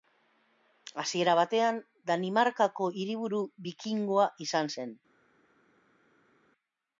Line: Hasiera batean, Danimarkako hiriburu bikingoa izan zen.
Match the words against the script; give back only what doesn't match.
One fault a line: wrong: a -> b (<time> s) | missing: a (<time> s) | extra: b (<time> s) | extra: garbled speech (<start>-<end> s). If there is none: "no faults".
no faults